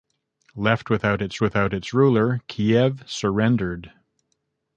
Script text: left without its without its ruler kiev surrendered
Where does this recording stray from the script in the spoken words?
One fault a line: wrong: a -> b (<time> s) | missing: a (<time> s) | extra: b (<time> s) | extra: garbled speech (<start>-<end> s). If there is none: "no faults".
no faults